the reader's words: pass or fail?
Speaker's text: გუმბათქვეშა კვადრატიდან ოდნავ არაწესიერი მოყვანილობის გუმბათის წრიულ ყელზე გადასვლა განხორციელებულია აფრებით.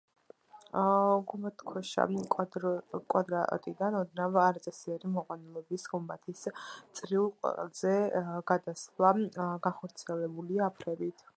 pass